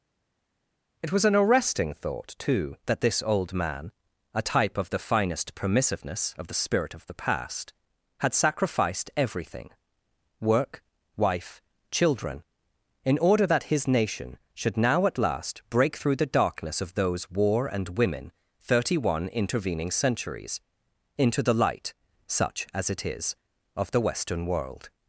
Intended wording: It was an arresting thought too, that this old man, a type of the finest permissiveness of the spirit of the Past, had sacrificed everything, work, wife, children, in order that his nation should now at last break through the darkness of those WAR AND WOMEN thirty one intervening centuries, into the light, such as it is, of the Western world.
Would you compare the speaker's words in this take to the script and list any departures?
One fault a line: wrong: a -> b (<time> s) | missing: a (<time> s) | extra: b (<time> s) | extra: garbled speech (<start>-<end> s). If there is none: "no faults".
no faults